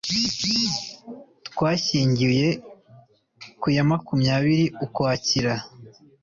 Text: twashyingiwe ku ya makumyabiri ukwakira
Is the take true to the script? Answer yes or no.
yes